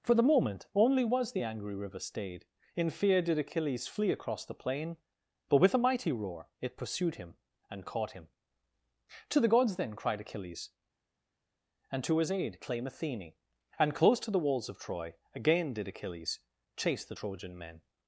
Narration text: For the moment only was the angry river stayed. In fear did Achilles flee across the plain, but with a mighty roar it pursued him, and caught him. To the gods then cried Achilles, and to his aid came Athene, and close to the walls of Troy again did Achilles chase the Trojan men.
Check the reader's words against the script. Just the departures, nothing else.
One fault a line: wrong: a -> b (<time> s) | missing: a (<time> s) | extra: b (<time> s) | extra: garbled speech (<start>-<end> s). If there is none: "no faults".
wrong: came -> claim (12.6 s)